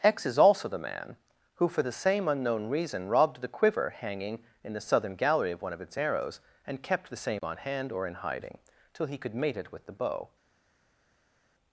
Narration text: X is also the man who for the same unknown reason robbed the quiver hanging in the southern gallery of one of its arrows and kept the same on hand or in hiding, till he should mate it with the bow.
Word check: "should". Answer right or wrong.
wrong